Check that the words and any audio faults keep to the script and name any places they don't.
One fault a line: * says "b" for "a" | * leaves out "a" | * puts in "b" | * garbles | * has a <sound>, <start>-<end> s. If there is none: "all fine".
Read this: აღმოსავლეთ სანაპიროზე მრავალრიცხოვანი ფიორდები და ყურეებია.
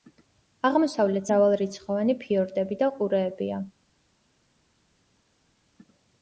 * leaves out "სანაპიროზე"